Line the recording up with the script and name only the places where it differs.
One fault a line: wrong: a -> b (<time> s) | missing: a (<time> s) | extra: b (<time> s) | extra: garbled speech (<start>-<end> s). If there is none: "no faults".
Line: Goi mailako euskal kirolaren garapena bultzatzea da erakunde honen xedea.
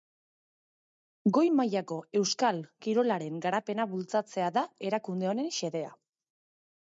no faults